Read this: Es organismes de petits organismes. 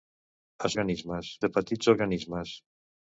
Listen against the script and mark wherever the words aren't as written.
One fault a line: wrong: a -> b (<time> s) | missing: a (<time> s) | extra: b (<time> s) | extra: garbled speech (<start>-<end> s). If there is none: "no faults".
no faults